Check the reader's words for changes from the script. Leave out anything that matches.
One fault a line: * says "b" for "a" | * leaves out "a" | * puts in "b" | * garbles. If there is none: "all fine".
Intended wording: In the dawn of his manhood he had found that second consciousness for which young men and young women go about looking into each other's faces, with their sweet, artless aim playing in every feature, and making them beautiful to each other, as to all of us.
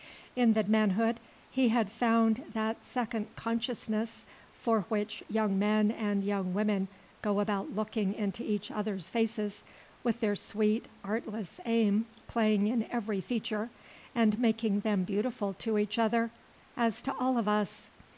* leaves out "dawn of his"